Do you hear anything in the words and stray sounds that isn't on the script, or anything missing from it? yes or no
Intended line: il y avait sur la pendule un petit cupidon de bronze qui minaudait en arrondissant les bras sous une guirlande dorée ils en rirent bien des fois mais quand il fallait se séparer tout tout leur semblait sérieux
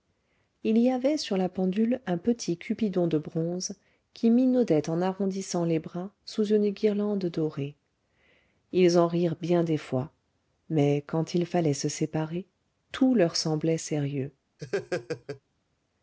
yes